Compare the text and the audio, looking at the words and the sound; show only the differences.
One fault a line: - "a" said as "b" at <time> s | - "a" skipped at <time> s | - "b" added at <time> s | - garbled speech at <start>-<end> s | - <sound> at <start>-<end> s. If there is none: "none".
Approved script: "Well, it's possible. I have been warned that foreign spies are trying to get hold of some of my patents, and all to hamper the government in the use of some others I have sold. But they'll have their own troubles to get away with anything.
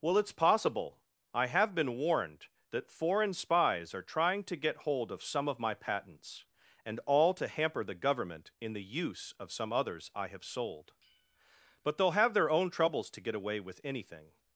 none